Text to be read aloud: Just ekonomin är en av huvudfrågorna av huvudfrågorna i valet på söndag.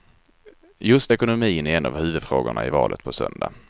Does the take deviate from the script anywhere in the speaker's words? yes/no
yes